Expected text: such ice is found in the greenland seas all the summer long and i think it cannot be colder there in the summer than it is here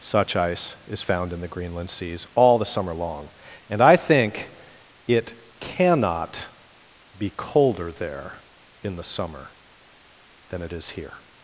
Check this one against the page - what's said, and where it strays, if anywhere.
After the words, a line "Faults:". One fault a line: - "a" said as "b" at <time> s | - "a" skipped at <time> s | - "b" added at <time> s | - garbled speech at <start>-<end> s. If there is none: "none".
such ice is found in the greenland seas all the summer long and i think it cannot be colder there in the summer than it is here
Faults:
none